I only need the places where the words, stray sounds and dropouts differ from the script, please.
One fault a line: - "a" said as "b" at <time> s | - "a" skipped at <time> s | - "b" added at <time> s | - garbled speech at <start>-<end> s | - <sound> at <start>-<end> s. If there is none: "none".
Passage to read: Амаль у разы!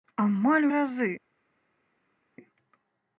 none